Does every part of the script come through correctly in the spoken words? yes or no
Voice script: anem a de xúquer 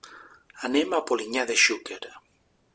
no